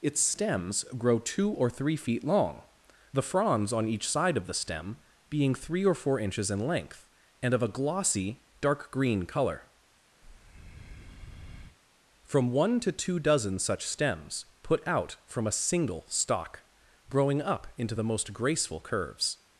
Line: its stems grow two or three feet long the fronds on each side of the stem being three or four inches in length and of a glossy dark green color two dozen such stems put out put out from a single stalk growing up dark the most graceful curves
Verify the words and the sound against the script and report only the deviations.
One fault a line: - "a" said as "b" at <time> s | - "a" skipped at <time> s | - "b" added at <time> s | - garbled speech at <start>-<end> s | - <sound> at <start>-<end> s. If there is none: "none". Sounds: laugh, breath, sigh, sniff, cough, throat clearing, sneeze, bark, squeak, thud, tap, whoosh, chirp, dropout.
- breath at 10.2-11.8 s
- "from one to" added at 12.2 s
- "put out" skipped at 15.2 s
- "dark" said as "into" at 17.8 s